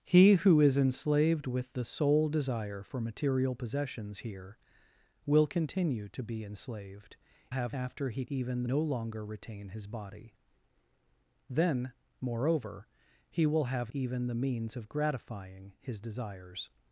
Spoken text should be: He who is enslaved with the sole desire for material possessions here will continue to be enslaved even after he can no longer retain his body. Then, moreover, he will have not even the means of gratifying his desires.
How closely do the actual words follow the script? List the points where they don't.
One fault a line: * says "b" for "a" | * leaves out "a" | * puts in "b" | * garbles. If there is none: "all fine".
* says "have" for "even"
* says "even" for "can"
* leaves out "not"